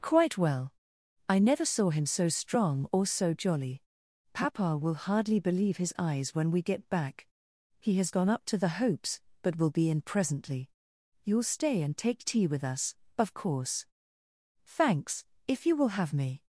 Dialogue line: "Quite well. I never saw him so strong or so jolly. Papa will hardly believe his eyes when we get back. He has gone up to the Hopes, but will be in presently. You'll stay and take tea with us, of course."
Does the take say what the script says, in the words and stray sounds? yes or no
no